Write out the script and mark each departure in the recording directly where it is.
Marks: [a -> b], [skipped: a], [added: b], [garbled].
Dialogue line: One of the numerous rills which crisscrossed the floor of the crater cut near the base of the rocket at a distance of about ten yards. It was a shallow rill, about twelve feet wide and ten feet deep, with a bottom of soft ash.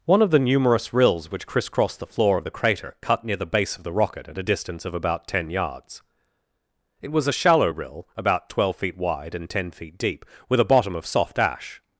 One of the numerous rills which crisscrossed the floor of the crater cut near the base of the rocket at a distance of about ten yards. It was a shallow rill, about twelve feet wide and ten feet deep, with a bottom of soft ash.